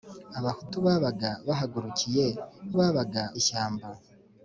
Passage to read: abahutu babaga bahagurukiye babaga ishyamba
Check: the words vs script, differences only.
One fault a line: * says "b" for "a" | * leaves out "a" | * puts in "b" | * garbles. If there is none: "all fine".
all fine